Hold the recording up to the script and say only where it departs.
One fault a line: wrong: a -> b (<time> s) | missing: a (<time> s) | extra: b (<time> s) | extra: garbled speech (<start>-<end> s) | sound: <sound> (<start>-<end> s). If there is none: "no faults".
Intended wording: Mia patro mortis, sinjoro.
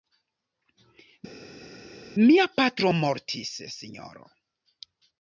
no faults